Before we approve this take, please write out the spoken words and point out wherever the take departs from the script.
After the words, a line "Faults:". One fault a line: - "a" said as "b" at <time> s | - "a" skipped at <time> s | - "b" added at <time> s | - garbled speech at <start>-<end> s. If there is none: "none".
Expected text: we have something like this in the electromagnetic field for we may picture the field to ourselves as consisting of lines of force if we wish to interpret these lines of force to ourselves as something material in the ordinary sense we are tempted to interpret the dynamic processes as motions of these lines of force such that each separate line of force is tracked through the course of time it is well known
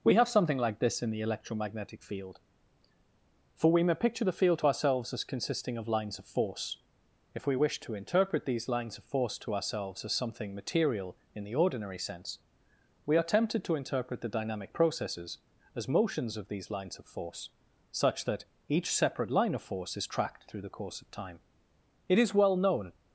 we have something like this in the electromagnetic field for we may picture the field to ourselves as consisting of lines of force if we wish to interpret these lines of force to ourselves as something material in the ordinary sense we are tempted to interpret the dynamic processes as motions of these lines of force such that each separate line of force is tracked through the course of time it is well known
Faults:
none